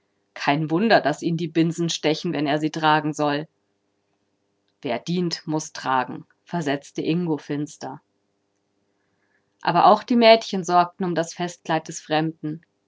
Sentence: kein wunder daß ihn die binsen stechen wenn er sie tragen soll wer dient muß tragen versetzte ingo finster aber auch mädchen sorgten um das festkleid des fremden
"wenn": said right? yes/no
yes